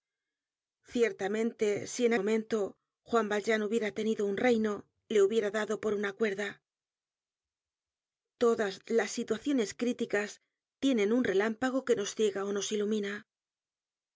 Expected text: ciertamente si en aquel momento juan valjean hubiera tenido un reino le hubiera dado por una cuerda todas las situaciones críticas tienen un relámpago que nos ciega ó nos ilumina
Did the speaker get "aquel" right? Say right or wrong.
wrong